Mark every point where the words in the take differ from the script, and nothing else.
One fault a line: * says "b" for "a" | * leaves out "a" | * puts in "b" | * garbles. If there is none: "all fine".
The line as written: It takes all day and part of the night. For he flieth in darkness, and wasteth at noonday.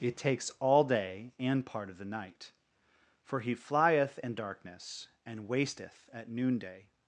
all fine